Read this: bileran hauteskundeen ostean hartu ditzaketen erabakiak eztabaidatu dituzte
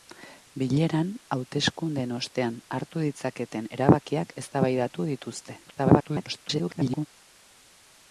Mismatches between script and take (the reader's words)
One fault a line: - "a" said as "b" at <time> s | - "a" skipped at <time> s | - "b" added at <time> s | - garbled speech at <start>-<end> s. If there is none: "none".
- garbled speech at 5.7-7.1 s